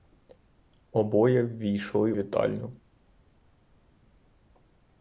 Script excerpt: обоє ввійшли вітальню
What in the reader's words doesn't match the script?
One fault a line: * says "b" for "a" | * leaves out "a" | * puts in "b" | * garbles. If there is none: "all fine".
all fine